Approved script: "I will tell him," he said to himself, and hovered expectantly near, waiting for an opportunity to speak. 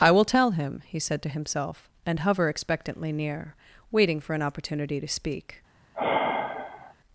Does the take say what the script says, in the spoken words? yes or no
no